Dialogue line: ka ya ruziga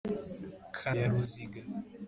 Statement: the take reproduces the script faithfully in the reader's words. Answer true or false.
true